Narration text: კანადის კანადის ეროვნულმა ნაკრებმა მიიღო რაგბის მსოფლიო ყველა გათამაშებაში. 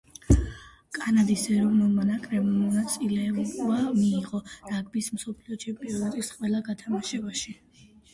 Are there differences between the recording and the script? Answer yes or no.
yes